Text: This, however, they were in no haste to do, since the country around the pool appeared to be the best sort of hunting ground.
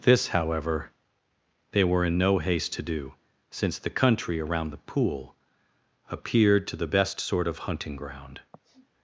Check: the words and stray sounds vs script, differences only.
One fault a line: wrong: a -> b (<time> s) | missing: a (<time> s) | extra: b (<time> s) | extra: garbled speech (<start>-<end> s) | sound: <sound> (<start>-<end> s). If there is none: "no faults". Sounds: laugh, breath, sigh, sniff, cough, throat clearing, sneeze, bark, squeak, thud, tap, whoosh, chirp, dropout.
missing: be (6.8 s)
sound: sniff (8.5-8.9 s)